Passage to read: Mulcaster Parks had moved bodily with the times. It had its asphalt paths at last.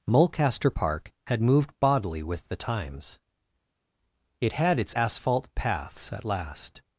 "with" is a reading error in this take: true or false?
false